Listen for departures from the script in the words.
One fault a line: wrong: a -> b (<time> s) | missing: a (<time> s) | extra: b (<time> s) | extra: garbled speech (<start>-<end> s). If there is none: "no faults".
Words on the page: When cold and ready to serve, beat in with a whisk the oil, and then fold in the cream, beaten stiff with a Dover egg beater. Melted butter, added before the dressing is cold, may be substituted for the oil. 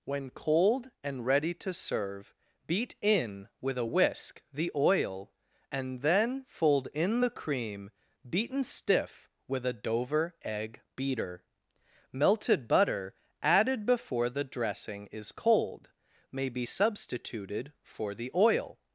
no faults